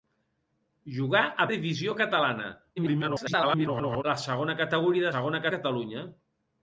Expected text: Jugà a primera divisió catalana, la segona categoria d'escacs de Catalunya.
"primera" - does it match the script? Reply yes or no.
no